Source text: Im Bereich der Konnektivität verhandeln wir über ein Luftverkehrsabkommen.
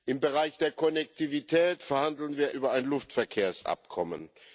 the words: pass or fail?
pass